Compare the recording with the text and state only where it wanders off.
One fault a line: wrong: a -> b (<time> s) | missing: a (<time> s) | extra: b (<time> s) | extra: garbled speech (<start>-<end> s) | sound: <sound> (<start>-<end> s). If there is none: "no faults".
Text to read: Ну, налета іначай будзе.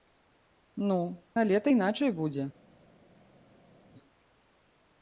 no faults